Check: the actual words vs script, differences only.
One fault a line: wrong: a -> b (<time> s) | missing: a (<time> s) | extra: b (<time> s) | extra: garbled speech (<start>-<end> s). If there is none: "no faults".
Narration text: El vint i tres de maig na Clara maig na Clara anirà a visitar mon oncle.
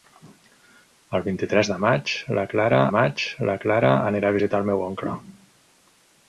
no faults